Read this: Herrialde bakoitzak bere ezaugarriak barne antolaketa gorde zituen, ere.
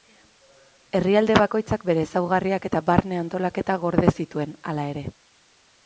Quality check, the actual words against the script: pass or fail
fail